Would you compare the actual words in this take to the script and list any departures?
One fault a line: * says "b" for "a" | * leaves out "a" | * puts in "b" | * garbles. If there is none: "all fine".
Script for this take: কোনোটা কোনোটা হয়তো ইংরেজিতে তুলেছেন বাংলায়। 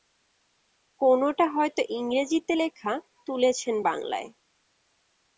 * leaves out "কোনোটা"
* puts in "লেখা"